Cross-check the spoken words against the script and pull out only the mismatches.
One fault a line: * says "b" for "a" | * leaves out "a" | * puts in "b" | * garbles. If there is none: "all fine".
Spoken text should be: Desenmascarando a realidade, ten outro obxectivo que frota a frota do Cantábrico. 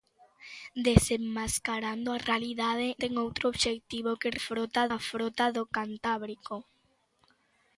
all fine